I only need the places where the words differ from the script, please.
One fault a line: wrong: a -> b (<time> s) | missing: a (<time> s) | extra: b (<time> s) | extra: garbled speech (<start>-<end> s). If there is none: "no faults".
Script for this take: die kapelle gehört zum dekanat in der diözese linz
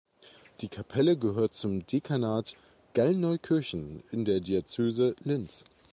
extra: gallneukirchen (3.0 s)